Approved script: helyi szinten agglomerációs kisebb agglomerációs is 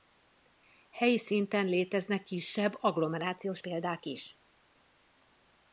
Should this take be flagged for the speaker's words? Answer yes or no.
yes